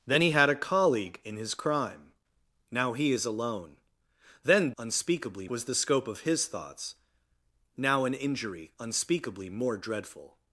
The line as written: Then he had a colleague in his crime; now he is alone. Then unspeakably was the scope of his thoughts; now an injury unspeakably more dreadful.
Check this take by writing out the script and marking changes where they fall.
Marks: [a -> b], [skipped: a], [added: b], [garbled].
Then he had a colleague in his crime; now he is alone. Then unspeakably was the scope of his thoughts; now an injury unspeakably more dreadful.